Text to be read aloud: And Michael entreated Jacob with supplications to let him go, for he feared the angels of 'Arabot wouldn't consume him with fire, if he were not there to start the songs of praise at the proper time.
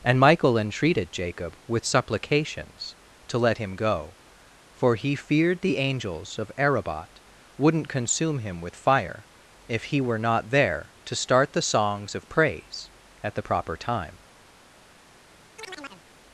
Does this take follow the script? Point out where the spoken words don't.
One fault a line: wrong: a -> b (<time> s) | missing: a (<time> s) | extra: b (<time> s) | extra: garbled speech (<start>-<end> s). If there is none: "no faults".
no faults